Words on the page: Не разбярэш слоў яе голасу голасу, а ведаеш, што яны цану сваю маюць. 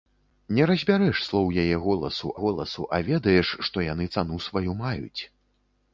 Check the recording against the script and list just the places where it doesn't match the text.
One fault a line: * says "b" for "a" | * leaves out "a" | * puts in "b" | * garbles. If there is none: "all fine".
all fine